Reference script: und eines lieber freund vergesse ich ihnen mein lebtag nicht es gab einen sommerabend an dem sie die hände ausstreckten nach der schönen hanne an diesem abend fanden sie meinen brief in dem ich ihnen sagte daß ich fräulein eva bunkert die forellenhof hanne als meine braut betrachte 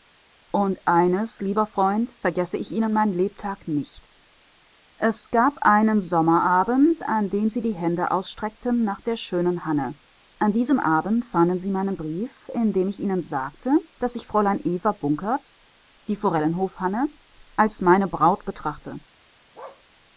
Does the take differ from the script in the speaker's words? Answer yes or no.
no